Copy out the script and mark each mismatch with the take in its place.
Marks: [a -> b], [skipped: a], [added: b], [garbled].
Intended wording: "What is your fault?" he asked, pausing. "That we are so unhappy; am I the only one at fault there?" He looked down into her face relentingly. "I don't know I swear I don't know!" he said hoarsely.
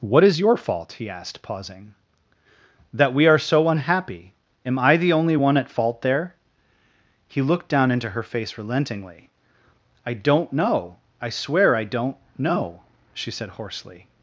"What is your fault?" he asked, pausing. "That we are so unhappy; am I the only one at fault there?" He looked down into her face relentingly. "I don't know I swear I don't know!" [he -> she] said hoarsely.